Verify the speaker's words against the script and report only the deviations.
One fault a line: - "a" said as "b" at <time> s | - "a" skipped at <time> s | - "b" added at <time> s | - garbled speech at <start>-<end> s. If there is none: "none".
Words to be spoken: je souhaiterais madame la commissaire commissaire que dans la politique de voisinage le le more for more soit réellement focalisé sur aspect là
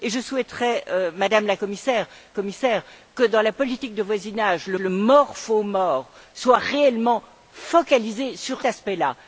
none